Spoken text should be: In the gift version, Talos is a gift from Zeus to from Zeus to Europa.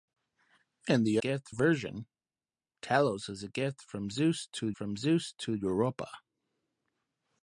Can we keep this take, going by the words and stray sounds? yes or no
yes